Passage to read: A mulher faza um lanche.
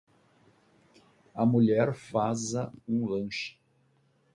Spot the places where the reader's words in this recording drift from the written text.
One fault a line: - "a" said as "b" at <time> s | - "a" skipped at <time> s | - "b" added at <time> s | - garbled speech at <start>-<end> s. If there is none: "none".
none